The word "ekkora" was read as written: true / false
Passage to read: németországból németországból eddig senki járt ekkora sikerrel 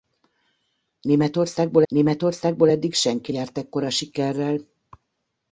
true